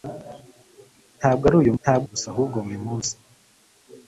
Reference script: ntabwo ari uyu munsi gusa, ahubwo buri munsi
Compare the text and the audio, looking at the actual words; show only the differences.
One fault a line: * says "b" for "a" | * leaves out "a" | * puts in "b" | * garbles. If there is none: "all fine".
* says "ntabwo" for "munsi"